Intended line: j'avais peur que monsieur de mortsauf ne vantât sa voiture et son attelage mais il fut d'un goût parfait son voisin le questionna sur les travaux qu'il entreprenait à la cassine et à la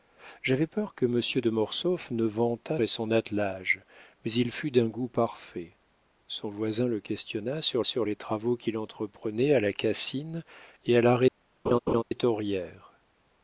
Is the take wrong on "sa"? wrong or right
wrong